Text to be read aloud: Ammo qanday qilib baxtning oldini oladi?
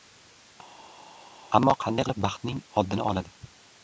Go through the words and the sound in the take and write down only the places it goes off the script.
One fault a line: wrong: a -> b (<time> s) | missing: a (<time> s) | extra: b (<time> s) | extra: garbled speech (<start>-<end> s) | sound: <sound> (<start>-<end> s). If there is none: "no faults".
no faults